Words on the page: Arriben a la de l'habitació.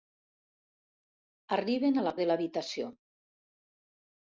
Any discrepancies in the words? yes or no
no